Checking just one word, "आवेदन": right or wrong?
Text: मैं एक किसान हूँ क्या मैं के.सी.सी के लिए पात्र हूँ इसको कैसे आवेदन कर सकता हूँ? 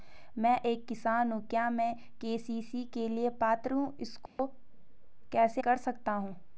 wrong